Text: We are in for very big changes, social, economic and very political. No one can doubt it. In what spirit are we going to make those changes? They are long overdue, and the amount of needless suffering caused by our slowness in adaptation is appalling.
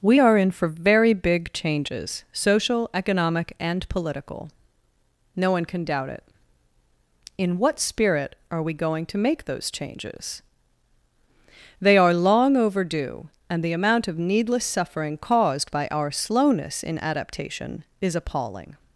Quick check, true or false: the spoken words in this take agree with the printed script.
false